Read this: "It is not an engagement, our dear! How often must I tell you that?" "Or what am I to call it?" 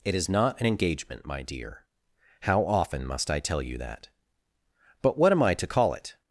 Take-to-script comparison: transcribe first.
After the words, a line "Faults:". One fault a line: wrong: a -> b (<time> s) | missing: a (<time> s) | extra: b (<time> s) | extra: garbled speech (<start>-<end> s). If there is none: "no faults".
"It is not an engagement, my dear! How often must I tell you that?" "But what am I to call it?"
Faults:
wrong: our -> my (1.2 s)
wrong: Or -> But (5.0 s)